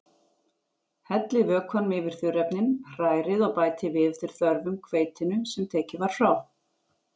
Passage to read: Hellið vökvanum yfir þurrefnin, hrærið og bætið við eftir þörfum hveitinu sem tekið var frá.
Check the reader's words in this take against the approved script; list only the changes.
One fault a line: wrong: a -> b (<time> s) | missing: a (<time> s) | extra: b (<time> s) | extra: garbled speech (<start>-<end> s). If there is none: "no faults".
no faults